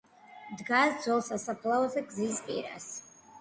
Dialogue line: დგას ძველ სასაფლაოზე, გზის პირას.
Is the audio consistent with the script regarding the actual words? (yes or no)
yes